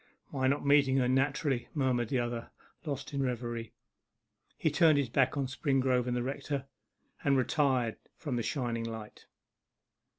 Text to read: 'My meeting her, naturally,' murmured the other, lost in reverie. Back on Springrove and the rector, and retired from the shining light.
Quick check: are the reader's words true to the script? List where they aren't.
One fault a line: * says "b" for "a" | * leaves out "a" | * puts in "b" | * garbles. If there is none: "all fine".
* puts in "not"
* puts in "He turned his"